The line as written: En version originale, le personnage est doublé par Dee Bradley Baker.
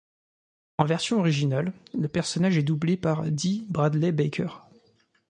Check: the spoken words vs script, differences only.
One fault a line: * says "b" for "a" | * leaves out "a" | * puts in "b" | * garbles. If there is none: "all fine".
all fine